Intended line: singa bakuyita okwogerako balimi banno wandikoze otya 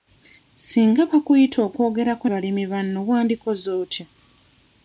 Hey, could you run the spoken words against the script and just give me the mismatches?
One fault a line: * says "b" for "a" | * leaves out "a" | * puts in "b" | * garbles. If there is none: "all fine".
all fine